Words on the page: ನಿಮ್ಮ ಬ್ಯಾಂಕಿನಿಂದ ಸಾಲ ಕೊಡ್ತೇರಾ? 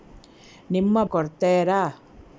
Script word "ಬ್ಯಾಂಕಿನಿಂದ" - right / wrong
wrong